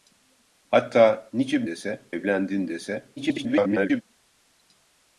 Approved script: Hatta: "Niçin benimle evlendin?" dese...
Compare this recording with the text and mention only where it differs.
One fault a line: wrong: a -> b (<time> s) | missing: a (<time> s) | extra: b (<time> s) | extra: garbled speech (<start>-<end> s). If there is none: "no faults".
wrong: benimle -> dese (1.6 s)
extra: garbled speech (3.2-4.0 s)